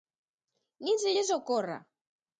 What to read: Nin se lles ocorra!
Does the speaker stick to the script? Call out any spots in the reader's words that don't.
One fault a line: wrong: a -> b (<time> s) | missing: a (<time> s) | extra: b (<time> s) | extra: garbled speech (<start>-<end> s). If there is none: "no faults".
no faults